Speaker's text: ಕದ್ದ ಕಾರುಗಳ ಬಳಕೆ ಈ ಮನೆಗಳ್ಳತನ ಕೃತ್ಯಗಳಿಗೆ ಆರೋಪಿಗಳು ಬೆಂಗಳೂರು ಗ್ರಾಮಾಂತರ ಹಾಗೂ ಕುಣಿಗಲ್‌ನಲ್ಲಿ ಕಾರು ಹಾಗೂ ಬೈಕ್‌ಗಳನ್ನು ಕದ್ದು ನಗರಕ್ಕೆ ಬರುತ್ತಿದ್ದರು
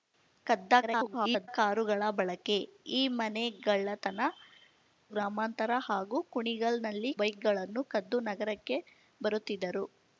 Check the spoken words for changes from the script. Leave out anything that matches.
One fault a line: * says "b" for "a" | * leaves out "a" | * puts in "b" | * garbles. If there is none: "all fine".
* garbles
* leaves out "ಕೃತ್ಯಗಳಿಗೆ ಆರೋಪಿಗಳು ಬೆಂಗಳೂರು"
* leaves out "ಕಾರು ಹಾಗೂ"